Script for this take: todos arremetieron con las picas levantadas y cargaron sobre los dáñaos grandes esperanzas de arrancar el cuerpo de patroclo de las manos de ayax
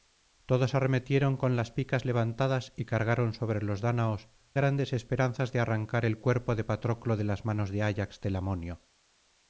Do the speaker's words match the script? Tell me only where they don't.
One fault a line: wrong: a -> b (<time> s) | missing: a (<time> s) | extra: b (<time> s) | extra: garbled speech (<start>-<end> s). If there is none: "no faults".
no faults